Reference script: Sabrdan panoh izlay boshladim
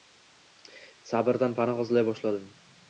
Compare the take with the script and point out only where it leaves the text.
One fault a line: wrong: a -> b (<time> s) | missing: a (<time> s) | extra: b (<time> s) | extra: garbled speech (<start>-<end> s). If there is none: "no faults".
no faults